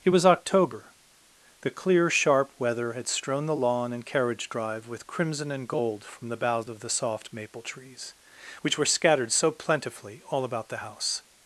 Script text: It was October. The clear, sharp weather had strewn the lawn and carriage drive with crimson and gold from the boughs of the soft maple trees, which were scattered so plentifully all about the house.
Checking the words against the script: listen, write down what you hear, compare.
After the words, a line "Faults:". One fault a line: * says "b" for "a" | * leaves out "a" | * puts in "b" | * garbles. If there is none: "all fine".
It was October. The clear, sharp weather had strewn the lawn and carriage drive with crimson and gold from the boughs of the soft maple trees, which were scattered so plentifully all about the house.
Faults:
all fine